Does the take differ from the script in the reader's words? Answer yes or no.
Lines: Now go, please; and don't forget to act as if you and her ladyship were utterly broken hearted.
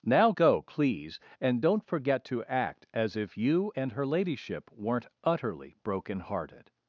yes